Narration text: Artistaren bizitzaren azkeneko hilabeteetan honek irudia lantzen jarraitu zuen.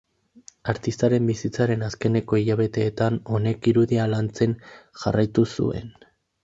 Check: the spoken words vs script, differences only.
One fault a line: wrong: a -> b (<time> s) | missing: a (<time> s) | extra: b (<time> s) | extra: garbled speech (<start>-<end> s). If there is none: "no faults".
no faults